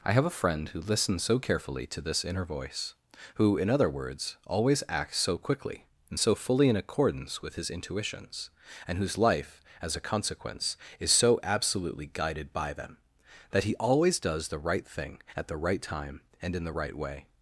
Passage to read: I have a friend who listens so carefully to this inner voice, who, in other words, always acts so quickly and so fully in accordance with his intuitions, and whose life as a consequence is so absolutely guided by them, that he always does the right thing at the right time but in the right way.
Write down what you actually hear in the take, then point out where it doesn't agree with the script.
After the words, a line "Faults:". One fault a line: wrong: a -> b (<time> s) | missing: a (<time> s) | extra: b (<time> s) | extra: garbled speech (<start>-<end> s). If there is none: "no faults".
I have a friend who listens so carefully to this inner voice, who, in other words, always acts so quickly and so fully in accordance with his intuitions, and whose life as a consequence is so absolutely guided by them, that he always does the right thing at the right time and in the right way.
Faults:
wrong: but -> and (16.4 s)